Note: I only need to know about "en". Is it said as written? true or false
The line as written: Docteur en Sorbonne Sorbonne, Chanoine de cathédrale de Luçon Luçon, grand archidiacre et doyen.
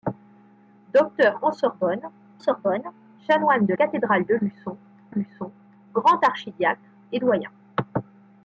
true